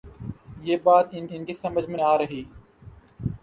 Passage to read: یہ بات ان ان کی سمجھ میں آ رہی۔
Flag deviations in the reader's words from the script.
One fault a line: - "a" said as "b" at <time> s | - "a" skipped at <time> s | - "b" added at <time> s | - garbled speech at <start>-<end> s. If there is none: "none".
none